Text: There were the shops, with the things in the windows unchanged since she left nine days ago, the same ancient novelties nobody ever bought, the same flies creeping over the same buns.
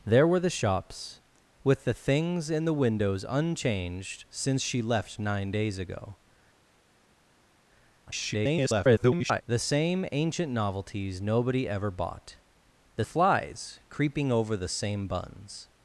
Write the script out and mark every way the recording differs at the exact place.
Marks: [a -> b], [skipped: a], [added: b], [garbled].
There were the shops, with the things in the windows unchanged since she left nine days ago, [garbled] the same ancient novelties nobody ever bought, the [skipped: same] flies creeping over the same buns.